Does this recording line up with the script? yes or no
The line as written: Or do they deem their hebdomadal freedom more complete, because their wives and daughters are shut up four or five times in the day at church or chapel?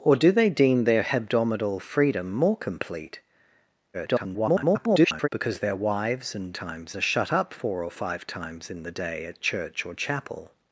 no